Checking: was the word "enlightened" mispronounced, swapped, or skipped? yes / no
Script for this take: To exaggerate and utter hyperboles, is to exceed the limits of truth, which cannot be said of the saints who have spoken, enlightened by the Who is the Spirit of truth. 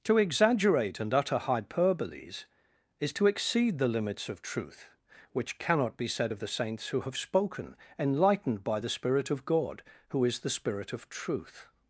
no